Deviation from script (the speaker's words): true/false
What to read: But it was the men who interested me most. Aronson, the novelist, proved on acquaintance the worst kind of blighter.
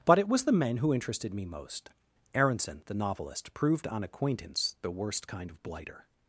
false